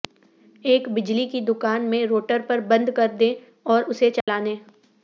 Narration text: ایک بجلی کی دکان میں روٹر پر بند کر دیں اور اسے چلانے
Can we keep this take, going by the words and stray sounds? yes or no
no